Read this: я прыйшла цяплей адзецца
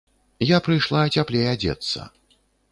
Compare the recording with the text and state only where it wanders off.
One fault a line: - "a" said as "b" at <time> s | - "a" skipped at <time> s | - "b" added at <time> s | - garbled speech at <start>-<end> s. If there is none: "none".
none